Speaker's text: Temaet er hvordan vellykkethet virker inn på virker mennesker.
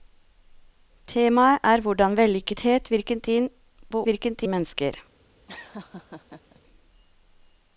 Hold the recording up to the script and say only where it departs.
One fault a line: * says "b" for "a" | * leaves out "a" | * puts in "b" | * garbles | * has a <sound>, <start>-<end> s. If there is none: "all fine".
* has a laugh, 5.5-6.6 s